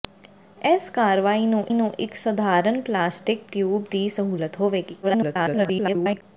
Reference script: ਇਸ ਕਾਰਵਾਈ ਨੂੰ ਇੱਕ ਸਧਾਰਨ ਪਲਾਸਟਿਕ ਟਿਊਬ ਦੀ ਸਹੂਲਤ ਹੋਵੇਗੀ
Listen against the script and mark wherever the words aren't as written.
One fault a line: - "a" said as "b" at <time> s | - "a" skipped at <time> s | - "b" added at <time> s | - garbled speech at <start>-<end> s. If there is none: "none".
- "ਨੂੰ" added at 1.7 s
- garbled speech at 5.0-6.2 s